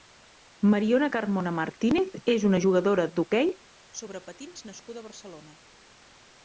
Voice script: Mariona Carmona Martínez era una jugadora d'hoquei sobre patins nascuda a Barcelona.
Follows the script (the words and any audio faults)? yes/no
no